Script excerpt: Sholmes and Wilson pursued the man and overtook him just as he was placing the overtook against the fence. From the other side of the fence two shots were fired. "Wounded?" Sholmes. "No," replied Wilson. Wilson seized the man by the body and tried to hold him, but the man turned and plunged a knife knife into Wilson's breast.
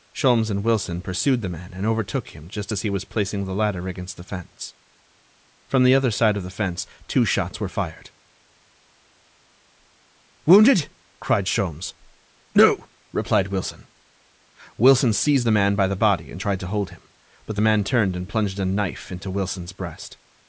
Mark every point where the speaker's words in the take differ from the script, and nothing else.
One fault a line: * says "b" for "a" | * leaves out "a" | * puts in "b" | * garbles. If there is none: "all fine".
* says "ladder" for "overtook"
* puts in "cried"
* leaves out "knife"